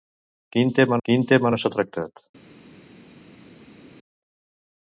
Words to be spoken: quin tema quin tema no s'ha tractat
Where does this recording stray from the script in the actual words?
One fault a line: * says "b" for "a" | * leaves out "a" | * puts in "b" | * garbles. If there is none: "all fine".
all fine